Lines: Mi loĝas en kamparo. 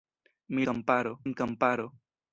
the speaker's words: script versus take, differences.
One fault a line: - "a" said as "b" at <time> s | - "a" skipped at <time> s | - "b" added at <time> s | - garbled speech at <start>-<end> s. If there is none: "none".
- "loĝas" said as "kamparo" at 0.7 s